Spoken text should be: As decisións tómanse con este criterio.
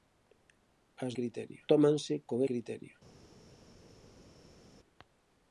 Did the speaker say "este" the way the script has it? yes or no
no